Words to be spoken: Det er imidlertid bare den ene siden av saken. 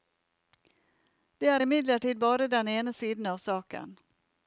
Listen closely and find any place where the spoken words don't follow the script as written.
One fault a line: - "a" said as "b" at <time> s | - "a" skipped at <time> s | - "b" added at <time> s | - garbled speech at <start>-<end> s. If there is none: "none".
none